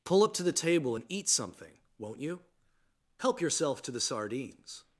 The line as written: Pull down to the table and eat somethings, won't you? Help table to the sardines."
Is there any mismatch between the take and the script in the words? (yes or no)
yes